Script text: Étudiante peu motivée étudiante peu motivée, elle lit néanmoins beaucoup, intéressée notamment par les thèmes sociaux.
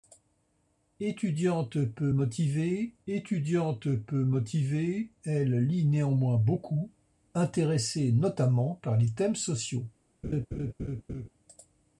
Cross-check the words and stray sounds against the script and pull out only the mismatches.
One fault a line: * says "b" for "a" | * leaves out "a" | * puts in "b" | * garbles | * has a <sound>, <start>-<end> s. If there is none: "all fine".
* has a laugh, 10.2-11.3 s